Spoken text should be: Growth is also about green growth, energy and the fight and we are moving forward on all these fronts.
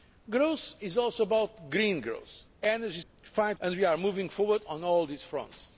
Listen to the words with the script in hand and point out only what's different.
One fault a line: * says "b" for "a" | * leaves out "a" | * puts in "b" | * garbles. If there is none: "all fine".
all fine